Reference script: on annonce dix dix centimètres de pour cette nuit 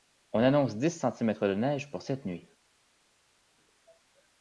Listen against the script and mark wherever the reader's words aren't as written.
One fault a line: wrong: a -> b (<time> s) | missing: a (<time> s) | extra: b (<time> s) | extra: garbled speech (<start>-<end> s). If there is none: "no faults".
missing: dix (0.9 s)
extra: neige (1.5 s)